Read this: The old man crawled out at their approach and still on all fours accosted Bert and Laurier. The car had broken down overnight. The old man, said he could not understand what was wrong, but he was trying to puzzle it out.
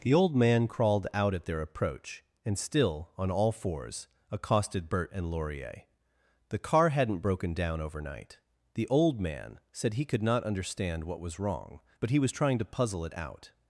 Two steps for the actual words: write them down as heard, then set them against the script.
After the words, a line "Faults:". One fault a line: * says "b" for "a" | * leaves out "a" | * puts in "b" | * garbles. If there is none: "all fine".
The old man crawled out at their approach and still on all fours accosted Bert and Laurier. The car hadn't broken down overnight. The old man, said he could not understand what was wrong, but he was trying to puzzle it out.
Faults:
* says "hadn't" for "had"